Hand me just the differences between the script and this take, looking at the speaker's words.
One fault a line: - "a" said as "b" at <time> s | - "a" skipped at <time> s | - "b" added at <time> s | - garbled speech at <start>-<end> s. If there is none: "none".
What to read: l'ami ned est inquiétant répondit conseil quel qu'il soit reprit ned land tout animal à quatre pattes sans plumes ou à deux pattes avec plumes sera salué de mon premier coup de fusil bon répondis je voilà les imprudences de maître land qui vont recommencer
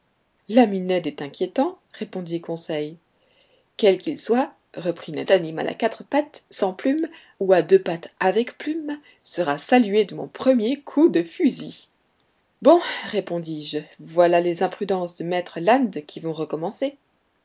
- "land tout" skipped at 5.3 s